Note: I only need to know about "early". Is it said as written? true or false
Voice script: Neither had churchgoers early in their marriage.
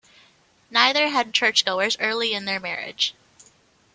true